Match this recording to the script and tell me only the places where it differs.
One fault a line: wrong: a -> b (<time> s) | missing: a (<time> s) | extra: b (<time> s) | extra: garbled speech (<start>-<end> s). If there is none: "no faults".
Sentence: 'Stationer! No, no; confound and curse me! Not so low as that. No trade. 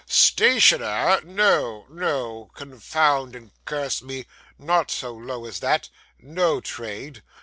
no faults